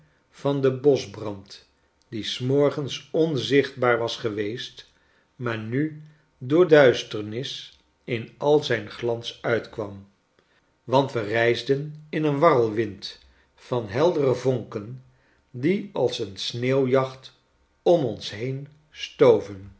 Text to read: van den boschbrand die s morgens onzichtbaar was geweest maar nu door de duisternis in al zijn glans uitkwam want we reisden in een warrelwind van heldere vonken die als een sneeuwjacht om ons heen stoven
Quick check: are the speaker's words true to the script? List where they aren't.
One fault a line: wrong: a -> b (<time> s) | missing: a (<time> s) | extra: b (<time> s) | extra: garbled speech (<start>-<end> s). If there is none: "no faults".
missing: de (6.7 s)